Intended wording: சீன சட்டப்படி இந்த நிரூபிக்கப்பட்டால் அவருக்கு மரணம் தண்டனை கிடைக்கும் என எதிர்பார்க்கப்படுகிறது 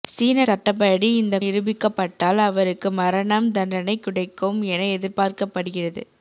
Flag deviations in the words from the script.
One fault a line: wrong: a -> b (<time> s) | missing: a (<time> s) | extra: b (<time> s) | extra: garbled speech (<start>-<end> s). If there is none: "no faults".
no faults